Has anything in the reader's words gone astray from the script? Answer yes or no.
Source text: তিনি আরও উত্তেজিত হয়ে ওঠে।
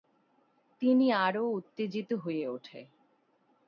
no